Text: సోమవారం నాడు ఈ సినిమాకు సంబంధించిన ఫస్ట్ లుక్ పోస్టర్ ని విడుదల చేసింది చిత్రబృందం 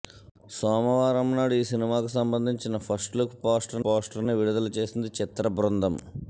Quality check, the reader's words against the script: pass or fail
fail